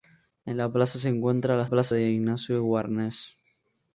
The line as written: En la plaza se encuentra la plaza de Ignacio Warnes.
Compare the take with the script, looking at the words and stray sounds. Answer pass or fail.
pass